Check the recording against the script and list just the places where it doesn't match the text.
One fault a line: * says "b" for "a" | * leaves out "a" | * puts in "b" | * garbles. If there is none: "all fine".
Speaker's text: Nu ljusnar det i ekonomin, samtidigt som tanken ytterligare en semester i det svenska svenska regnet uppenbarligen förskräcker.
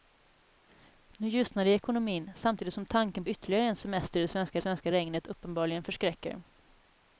all fine